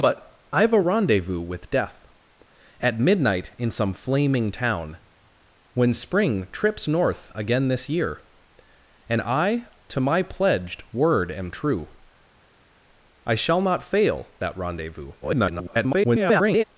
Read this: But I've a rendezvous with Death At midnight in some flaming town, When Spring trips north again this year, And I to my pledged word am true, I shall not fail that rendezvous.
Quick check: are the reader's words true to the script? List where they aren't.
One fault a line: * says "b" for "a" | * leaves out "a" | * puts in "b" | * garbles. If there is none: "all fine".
* garbles